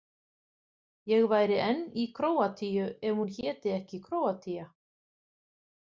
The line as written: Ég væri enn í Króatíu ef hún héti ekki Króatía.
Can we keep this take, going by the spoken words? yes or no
yes